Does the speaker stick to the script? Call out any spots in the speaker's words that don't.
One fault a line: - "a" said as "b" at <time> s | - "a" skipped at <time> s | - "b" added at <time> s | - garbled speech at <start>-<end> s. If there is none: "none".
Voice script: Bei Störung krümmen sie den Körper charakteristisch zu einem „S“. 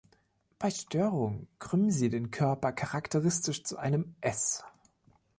none